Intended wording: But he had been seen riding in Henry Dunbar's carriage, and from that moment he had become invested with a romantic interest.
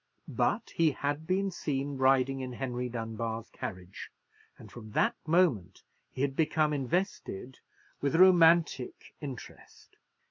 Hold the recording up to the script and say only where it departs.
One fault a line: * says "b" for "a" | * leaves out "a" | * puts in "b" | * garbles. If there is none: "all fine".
all fine